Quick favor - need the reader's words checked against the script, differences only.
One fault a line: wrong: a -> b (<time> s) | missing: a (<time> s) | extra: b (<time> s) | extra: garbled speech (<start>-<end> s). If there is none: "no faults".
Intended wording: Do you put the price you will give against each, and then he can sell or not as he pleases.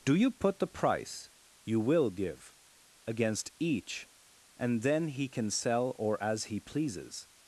missing: not (6.2 s)